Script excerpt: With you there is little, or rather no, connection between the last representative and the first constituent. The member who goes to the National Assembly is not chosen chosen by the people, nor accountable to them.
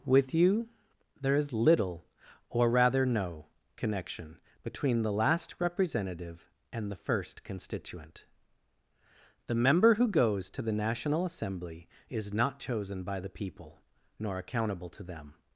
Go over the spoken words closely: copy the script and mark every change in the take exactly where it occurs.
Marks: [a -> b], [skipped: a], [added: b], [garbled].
With you there is little, or rather no, connection between the last representative and the first constituent. The member who goes to the National Assembly is not chosen [skipped: chosen] by the people, nor accountable to them.